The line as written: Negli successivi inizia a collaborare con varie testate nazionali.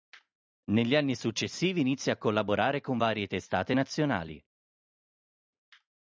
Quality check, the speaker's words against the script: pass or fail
fail